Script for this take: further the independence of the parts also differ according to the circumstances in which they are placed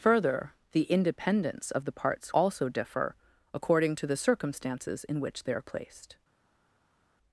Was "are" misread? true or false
false